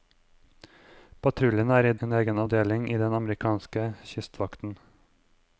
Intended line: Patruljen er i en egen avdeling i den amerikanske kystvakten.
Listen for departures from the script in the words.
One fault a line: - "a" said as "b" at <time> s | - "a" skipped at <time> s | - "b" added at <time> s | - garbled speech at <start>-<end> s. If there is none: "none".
none